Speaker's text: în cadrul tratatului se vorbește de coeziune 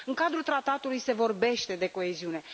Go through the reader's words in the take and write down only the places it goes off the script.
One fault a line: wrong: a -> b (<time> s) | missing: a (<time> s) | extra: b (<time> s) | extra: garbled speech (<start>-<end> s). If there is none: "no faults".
no faults